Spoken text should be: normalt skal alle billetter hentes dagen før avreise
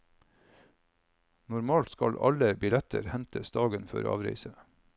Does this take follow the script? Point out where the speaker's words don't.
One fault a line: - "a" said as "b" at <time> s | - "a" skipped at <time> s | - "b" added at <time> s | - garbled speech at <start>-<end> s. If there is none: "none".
none